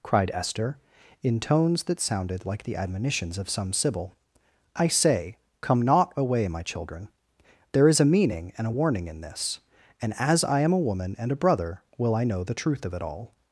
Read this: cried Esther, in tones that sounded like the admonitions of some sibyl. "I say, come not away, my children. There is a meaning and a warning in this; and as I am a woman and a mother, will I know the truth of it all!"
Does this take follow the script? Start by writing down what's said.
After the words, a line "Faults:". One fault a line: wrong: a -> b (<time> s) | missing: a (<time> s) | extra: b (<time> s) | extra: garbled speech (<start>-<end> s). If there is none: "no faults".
cried Esther, in tones that sounded like the admonitions of some sibyl. "I say, come not away, my children. There is a meaning and a warning in this; and as I am a woman and a brother, will I know the truth of it all!"
Faults:
wrong: mother -> brother (11.4 s)